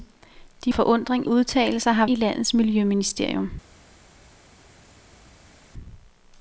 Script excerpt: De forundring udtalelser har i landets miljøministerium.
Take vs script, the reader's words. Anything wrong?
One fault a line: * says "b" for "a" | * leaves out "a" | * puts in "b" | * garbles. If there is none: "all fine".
all fine